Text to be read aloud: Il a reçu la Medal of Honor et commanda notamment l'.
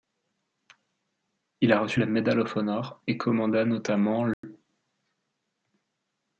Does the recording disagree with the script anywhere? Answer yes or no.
no